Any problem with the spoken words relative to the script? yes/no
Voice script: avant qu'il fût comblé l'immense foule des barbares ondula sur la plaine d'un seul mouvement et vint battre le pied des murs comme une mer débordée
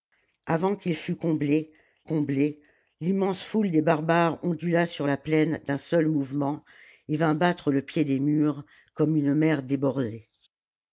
yes